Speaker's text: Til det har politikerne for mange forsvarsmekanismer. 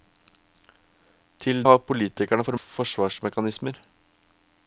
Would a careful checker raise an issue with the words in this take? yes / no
yes